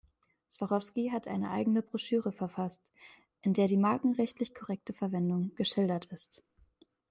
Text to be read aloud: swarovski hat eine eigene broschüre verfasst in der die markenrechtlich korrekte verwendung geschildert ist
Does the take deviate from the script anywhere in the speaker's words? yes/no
no